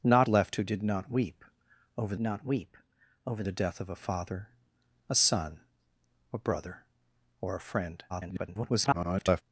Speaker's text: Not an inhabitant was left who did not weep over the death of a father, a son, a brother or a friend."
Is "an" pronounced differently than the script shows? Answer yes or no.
yes